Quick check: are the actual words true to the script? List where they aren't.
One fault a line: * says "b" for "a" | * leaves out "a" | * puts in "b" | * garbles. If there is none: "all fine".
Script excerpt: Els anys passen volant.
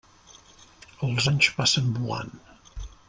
all fine